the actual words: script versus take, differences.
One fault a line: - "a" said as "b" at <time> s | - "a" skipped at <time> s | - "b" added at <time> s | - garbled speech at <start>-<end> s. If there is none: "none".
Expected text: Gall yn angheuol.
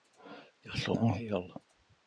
none